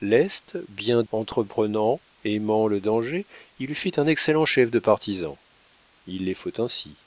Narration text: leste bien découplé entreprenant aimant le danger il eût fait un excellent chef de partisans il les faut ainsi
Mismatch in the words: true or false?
true